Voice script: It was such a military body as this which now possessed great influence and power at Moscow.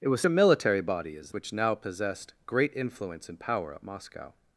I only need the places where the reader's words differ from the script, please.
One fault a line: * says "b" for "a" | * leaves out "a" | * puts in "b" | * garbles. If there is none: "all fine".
* leaves out "such"
* leaves out "this"